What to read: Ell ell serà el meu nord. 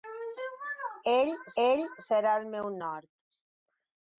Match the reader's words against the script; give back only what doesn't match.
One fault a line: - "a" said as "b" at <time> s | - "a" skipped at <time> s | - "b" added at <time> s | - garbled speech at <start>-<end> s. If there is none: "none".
none